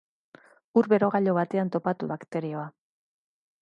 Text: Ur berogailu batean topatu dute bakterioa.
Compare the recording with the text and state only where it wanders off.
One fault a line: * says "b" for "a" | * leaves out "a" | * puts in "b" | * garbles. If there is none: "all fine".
* leaves out "dute"